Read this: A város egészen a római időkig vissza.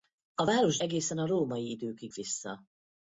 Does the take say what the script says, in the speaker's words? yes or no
yes